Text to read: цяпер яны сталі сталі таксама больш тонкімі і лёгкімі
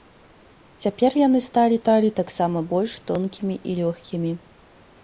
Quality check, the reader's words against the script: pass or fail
pass